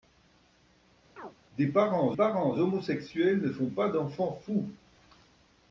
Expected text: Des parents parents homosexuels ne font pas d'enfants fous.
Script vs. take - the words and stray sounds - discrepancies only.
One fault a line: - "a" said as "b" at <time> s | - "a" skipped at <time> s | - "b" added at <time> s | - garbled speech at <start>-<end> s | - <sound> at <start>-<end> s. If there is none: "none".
- chirp at 1.2-1.4 s